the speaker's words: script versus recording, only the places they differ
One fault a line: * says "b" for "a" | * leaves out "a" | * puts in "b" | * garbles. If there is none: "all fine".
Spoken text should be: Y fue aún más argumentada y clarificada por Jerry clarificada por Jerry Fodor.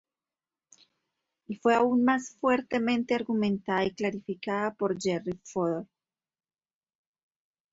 * puts in "fuertemente"
* leaves out "clarificada por Jerry"